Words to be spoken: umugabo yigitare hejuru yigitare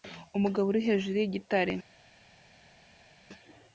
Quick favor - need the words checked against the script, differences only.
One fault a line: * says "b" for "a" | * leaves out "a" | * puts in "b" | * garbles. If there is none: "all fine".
* says "uri" for "yigitare"